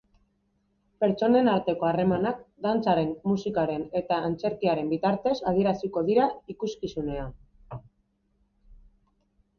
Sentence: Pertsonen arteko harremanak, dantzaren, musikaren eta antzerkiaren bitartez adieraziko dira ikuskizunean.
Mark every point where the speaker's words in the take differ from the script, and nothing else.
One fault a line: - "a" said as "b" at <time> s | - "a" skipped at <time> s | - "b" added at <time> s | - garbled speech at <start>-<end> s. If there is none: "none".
none